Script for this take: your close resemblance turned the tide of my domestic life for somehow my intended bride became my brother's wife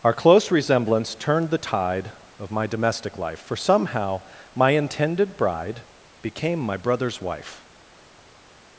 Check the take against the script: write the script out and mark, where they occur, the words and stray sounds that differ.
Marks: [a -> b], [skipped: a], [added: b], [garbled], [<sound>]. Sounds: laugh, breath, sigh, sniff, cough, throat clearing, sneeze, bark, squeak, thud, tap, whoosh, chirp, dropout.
[your -> our] close resemblance turned the tide of my domestic life for somehow my intended bride became my brother's wife